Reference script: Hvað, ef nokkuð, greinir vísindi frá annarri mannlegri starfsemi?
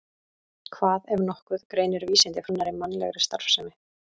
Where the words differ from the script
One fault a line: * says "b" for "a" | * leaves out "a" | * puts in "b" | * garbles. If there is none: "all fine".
* leaves out "frá"